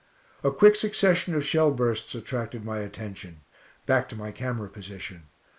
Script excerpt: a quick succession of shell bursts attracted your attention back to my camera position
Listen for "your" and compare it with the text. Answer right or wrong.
wrong